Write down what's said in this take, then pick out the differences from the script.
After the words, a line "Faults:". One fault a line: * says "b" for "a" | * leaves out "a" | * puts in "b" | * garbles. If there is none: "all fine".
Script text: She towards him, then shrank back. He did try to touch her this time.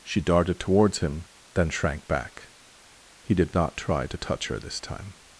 She darted towards him, then shrank back. He did not try to touch her this time.
Faults:
* puts in "darted"
* puts in "not"